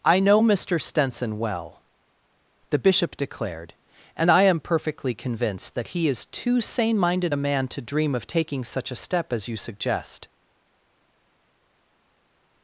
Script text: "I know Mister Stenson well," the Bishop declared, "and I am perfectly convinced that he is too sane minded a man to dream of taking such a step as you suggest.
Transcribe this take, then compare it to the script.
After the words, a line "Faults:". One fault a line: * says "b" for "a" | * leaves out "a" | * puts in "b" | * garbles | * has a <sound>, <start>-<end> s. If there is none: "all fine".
"I know Mister Stenson well," the Bishop declared, "and I am perfectly convinced that he is too sane minded a man to dream of taking such a step as you suggest.
Faults:
all fine